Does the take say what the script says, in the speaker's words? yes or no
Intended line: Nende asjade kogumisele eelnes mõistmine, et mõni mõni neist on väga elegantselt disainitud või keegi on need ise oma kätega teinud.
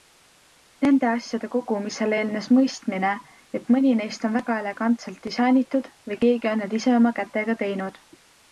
no